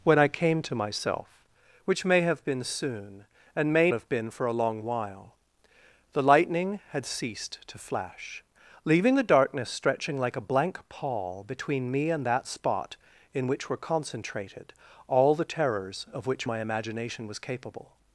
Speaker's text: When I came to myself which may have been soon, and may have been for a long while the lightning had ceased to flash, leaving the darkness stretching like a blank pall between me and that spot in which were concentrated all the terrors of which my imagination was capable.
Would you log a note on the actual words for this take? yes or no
no